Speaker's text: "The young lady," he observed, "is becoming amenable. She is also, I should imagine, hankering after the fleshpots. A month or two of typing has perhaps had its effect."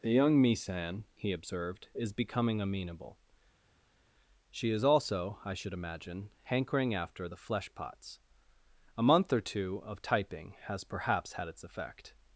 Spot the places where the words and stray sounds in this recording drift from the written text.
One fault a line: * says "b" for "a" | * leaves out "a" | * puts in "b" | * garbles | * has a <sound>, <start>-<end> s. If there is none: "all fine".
* says "misan" for "lady"